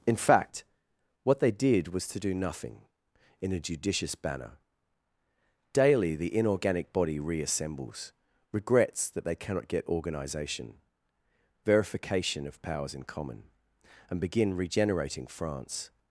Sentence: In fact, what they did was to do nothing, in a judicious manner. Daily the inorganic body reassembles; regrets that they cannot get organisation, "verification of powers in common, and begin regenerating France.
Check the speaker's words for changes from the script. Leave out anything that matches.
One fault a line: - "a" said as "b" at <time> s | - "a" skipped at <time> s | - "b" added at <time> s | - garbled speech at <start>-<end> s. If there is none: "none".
- "manner" said as "banner" at 4.2 s